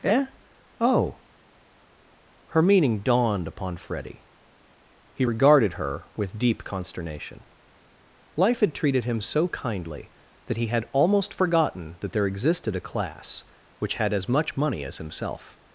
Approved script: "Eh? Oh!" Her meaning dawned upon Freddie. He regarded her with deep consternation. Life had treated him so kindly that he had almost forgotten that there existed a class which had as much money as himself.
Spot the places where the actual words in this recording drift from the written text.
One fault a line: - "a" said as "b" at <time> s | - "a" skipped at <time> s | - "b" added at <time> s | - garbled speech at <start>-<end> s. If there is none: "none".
none